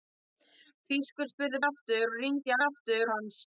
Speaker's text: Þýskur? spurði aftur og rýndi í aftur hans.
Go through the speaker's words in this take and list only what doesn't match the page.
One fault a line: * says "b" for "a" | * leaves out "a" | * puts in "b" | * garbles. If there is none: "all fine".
all fine